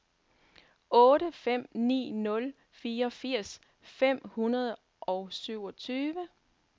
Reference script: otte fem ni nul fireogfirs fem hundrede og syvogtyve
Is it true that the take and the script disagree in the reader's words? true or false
false